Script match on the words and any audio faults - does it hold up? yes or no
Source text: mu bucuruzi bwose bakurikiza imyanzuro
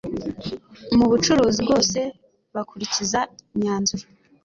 yes